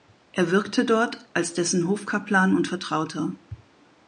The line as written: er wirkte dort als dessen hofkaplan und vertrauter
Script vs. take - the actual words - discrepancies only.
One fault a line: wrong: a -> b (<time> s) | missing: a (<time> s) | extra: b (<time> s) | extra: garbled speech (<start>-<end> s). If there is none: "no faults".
no faults